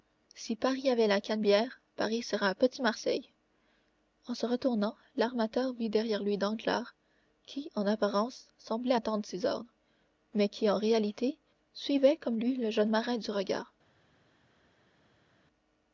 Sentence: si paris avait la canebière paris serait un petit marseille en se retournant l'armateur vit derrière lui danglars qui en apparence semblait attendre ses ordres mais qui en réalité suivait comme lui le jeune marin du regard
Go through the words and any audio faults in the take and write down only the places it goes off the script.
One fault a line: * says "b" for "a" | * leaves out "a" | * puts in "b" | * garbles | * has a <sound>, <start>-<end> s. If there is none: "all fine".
all fine